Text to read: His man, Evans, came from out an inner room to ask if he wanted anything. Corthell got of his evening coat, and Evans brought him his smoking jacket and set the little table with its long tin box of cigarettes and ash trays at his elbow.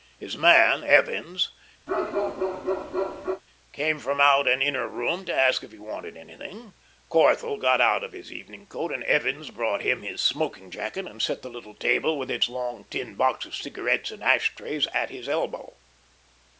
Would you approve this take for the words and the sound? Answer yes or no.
no